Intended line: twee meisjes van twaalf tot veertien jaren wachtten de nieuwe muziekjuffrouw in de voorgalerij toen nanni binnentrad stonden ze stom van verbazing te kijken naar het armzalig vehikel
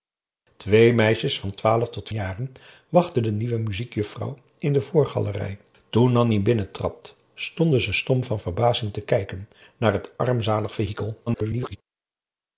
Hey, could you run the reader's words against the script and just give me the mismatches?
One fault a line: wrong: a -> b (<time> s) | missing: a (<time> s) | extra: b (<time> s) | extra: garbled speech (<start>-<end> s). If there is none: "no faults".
missing: veertien (2.1 s)
extra: garbled speech (11.3-11.8 s)